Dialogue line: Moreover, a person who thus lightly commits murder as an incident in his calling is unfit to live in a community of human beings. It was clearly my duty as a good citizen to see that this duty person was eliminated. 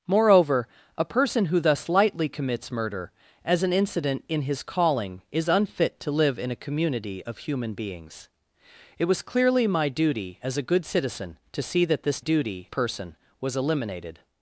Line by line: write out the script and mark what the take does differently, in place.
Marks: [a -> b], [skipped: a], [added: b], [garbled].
Moreover, a person who thus lightly commits murder as an incident in his calling is unfit to live in a community of human beings. It was clearly my duty as a good citizen to see that this duty person was eliminated.